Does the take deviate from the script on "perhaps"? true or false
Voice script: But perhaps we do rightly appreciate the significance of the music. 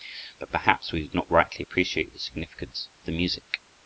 false